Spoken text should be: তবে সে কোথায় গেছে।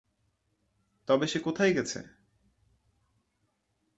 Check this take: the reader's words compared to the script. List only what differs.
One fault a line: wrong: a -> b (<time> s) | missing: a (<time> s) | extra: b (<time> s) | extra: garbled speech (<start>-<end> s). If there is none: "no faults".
no faults